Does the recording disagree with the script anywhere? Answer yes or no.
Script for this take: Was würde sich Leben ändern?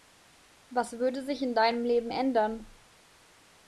yes